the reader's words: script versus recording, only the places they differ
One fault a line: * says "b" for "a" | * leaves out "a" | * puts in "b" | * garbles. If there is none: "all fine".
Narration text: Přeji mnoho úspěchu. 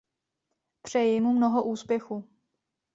* puts in "mu"